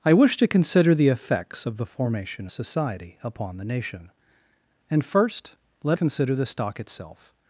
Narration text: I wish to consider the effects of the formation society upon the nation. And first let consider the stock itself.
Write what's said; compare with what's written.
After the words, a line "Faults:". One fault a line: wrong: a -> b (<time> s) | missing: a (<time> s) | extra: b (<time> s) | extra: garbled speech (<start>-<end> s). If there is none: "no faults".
I wish to consider the effects of the formation society upon the nation. And first let consider the stock itself.
Faults:
no faults